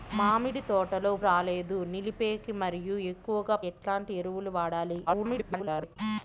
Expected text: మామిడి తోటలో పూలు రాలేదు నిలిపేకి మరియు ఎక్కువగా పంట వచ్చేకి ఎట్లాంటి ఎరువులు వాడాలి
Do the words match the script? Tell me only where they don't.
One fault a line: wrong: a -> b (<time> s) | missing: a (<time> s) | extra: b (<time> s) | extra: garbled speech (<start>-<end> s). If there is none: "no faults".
missing: పూలు (1.1 s)
missing: పంట వచ్చేకి (3.6 s)
extra: garbled speech (5.1-6.0 s)